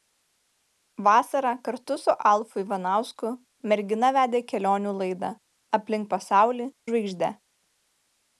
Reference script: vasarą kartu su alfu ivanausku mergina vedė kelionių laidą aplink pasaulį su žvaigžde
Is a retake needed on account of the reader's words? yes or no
yes